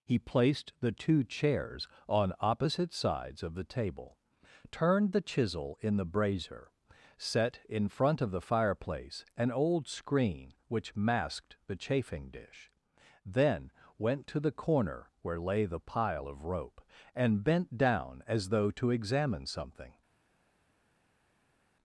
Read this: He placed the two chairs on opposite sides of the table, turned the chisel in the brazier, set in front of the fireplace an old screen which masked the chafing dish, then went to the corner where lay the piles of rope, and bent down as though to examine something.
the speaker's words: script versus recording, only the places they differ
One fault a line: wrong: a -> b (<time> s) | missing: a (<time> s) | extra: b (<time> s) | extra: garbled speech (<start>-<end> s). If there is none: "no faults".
wrong: piles -> pile (15.8 s)